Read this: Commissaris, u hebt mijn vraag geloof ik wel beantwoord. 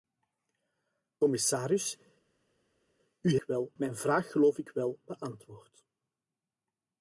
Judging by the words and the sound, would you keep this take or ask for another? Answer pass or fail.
fail